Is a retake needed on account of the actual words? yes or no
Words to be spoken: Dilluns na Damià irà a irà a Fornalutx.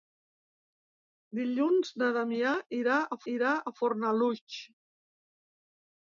no